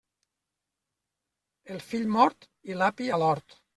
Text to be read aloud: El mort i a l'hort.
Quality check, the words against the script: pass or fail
fail